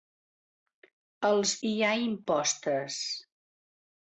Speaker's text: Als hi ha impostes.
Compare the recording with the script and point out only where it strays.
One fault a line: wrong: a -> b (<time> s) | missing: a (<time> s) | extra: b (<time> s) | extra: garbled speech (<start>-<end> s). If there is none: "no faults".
no faults